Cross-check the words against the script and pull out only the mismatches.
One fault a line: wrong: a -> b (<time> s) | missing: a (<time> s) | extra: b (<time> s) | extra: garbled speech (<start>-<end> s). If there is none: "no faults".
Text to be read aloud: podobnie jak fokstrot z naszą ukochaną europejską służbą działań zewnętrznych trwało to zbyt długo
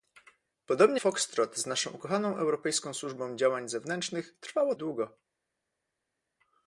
missing: jak (1.0 s)
missing: to zbyt (4.7 s)